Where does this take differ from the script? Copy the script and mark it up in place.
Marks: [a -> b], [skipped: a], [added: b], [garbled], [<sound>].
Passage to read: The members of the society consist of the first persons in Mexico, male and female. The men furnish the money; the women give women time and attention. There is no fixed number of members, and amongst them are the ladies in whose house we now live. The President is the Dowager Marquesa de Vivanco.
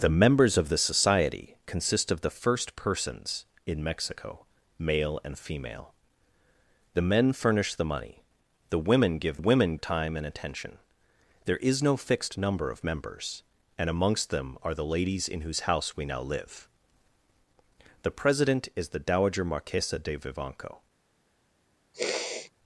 The members of the society consist of the first persons in Mexico, male and female. The men furnish the money; the women give women time and attention. There is no fixed number of members, and amongst them are the ladies in whose house we now live. The President is the Dowager Marquesa de Vivanco. [sniff]